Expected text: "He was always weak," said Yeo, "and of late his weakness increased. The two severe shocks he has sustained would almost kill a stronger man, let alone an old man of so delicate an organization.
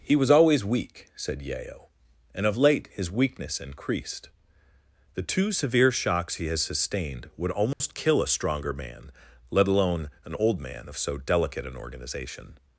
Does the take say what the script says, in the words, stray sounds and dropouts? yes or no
no